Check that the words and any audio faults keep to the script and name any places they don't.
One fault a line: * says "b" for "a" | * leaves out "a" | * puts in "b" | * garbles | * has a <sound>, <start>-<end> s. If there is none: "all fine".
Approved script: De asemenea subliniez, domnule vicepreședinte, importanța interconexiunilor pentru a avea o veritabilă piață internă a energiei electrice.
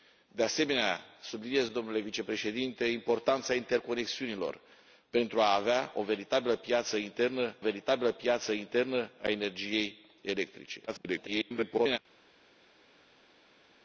* puts in "veritabilă piață internă"
* garbles